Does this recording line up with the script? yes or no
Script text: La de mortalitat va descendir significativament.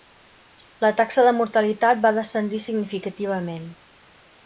no